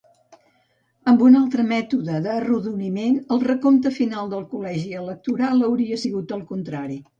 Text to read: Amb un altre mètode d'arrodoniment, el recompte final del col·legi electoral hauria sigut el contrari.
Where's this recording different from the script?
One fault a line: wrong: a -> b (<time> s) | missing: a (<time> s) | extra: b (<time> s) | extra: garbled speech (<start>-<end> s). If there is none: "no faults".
no faults